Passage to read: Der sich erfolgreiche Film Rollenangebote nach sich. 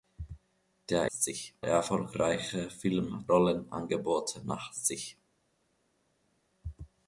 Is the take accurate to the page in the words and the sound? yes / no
yes